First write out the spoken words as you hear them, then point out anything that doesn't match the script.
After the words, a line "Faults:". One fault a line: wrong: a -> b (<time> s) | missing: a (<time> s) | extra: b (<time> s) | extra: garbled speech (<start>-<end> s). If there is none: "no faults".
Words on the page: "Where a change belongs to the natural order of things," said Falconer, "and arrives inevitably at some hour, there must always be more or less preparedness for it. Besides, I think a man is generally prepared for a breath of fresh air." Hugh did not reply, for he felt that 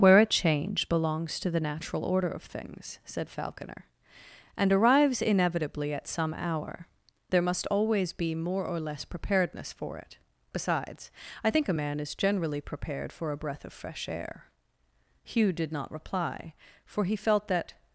"Where a change belongs to the natural order of things," said Falconer, "and arrives inevitably at some hour, there must always be more or less preparedness for it. Besides, I think a man is generally prepared for a breath of fresh air." Hugh did not reply, for he felt that
Faults:
no faults